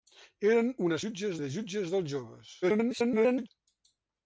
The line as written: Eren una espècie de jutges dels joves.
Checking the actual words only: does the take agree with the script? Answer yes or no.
no